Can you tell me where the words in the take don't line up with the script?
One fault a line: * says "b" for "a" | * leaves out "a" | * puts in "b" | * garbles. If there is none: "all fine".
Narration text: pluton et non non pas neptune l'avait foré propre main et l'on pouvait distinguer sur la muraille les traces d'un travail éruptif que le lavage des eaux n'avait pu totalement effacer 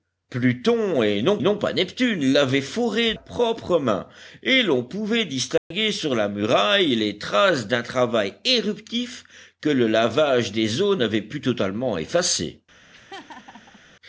all fine